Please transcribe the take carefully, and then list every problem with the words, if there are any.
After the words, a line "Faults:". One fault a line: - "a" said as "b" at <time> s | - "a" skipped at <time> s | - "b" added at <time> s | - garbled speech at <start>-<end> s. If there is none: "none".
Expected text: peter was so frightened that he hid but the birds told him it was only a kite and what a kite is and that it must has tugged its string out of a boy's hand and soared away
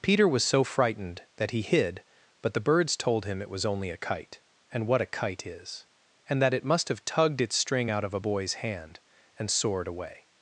peter was so frightened that he hid but the birds told him it was only a kite and what a kite is and that it must have tugged its string out of a boy's hand and soared away
Faults:
- "has" said as "have" at 6.9 s